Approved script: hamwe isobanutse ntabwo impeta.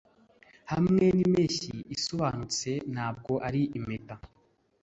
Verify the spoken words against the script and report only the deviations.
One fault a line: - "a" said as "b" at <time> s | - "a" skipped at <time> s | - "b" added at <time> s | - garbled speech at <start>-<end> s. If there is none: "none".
- "n'impeshyi" added at 1.1 s
- "ari" added at 3.5 s